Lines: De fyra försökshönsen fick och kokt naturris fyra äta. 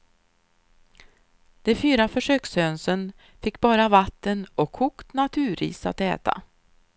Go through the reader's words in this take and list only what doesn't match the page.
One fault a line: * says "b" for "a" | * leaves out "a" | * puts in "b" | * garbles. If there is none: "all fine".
* puts in "bara vatten"
* says "att" for "fyra"